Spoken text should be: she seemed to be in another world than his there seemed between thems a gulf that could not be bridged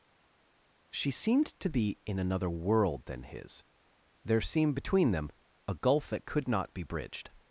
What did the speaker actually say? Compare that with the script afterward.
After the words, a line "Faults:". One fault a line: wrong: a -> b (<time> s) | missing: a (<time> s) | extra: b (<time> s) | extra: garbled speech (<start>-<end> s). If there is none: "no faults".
she seemed to be in another world than his there seemed between them a gulf that could not be bridged
Faults:
wrong: thems -> them (5.1 s)